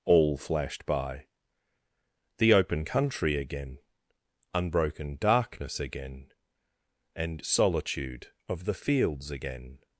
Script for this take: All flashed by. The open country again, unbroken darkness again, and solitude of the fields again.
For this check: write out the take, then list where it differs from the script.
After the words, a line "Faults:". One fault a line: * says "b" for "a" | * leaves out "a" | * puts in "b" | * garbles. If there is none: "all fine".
All flashed by. The open country again, unbroken darkness again, and solitude of the fields again.
Faults:
all fine